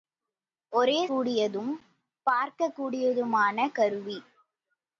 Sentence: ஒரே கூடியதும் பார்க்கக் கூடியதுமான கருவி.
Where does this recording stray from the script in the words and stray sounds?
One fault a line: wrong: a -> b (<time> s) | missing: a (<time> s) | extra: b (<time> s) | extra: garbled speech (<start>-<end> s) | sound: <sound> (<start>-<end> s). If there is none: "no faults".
no faults